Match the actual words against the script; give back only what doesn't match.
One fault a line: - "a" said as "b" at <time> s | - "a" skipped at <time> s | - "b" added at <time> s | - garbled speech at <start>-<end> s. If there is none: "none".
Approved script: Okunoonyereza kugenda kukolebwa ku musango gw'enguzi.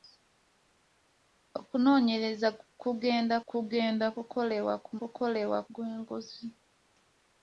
- "kugenda" added at 3.5 s
- "musango" said as "kukolebwa" at 5.0 s